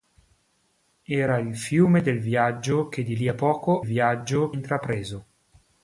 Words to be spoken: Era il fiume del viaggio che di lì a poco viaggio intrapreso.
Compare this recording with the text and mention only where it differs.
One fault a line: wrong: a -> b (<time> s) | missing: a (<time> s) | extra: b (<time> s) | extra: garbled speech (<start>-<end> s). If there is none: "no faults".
no faults